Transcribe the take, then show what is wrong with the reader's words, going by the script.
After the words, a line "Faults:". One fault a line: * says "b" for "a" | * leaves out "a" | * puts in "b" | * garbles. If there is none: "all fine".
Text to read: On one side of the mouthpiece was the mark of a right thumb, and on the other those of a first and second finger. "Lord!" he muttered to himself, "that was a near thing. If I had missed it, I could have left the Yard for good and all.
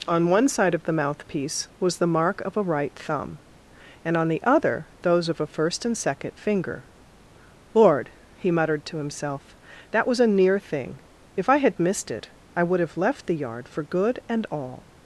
On one side of the mouthpiece was the mark of a right thumb, and on the other those of a first and second finger. "Lord!" he muttered to himself, "that was a near thing. If I had missed it, I would have left the Yard for good and all.
Faults:
* says "would" for "could"